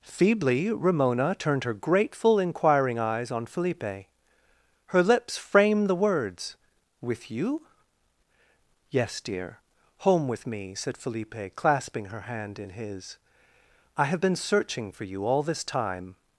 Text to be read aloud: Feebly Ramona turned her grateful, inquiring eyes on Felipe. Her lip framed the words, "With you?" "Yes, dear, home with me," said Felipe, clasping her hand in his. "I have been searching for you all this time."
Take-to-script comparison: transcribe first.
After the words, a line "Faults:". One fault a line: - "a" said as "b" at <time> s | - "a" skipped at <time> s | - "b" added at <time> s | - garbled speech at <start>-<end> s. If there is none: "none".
Feebly Ramona turned her grateful, inquiring eyes on Felipe. Her lips framed the words, "With you?" "Yes, dear, home with me," said Felipe, clasping her hand in his. "I have been searching for you all this time."
Faults:
- "lip" said as "lips" at 5.0 s